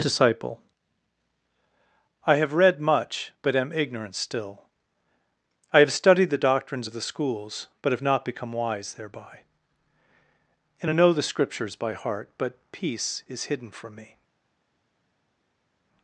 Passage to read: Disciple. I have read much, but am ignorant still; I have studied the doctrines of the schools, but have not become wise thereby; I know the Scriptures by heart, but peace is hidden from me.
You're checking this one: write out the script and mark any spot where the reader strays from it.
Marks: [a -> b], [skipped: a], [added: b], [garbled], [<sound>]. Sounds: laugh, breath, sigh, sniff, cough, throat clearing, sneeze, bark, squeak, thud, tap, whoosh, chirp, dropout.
Disciple. I have read much, but am ignorant still; I have studied the doctrines of the schools, but have not become wise thereby; [added: and] I know the Scriptures by heart, but peace is hidden from me.